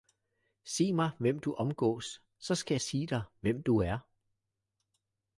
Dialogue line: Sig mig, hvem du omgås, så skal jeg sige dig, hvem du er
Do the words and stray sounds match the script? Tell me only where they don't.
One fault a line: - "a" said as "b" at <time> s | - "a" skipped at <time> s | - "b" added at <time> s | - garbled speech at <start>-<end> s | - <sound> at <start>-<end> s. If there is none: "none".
none